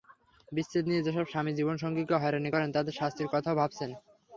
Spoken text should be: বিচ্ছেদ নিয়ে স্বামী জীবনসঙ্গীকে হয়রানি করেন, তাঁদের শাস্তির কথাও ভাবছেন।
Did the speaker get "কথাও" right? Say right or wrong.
right